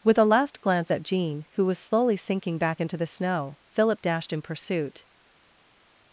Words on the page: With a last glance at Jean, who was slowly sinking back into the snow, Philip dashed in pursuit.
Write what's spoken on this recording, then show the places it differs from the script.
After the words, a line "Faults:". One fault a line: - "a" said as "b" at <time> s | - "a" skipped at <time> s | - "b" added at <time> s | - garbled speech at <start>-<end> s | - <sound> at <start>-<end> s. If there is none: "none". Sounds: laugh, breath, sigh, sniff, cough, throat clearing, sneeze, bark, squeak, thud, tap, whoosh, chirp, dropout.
With a last glance at Jean, who was slowly sinking back into the snow, Philip dashed in pursuit.
Faults:
none